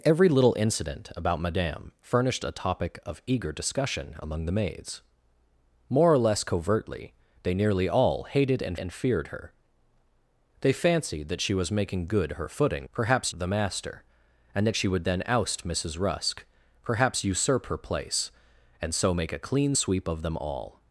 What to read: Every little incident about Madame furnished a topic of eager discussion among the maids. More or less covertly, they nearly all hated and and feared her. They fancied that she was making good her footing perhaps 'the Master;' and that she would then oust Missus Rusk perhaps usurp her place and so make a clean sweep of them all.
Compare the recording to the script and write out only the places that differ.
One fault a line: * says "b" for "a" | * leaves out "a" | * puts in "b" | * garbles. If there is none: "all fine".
all fine